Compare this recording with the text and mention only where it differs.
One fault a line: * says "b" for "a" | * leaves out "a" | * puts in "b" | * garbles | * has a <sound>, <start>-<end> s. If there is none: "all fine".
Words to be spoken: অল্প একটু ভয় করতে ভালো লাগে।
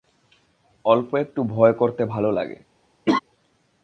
* has a laugh, 3.1-3.2 s